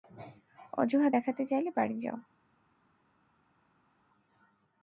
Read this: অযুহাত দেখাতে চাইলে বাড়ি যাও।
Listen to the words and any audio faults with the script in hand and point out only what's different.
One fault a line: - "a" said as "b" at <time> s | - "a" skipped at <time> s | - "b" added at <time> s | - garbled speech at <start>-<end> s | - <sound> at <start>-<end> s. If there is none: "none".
none